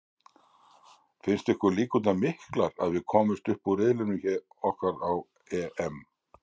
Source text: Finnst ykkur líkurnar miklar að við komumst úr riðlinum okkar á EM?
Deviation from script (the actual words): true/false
true